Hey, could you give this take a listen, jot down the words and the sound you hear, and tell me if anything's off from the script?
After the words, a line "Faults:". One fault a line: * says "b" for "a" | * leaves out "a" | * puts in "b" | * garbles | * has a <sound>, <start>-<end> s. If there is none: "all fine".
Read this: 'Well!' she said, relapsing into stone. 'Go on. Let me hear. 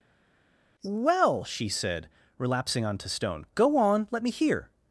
'Well!' she said, relapsing onto stone. 'Go on. Let me hear.
Faults:
* says "onto" for "into"